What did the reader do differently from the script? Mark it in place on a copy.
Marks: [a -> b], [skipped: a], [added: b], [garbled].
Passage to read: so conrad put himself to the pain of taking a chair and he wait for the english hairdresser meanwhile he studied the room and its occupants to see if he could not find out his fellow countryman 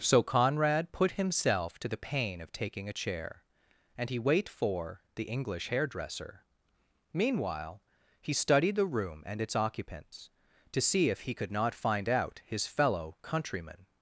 so conrad put himself to the pain of taking a chair and he wait for the english hairdresser meanwhile he studied the room and its occupants to see if he could not find out his fellow countryman